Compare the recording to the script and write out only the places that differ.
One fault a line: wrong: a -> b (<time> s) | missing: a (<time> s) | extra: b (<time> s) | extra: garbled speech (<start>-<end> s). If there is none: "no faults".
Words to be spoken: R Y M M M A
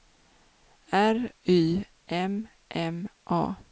missing: M (3.1 s)